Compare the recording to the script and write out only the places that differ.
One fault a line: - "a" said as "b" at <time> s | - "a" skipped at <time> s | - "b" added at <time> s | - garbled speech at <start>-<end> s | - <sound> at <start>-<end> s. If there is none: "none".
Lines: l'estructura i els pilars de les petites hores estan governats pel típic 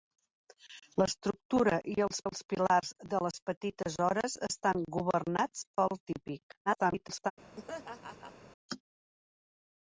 - "els" added at 2.3 s
- garbled speech at 6.7-7.3 s
- laugh at 7.6-8.4 s